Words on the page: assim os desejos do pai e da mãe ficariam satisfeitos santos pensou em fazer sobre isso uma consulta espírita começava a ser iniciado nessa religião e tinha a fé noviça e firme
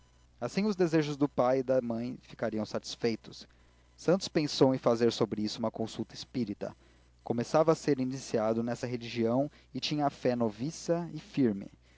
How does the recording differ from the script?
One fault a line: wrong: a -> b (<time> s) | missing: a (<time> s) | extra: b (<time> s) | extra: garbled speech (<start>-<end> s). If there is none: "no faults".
no faults